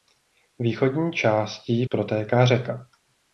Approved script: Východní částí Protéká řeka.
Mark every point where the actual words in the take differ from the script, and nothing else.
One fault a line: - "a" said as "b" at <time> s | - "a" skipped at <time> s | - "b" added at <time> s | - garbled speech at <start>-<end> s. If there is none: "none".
none